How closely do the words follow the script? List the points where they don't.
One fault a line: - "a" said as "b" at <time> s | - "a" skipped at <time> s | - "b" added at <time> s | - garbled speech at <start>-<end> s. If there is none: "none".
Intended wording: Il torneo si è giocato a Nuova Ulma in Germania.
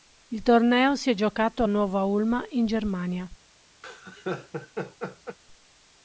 none